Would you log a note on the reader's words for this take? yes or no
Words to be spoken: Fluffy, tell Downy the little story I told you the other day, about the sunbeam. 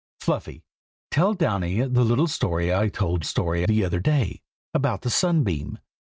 yes